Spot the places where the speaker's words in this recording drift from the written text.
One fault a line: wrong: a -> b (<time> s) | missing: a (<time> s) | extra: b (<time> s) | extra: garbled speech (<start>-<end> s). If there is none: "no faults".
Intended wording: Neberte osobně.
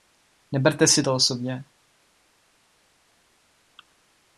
extra: si to (0.9 s)